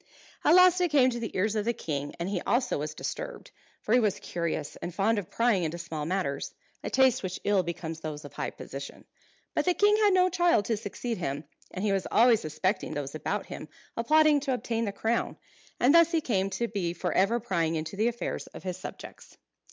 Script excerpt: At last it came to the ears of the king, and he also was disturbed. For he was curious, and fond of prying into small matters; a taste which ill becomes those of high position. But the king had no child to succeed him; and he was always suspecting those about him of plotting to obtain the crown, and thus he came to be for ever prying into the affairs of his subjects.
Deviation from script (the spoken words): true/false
false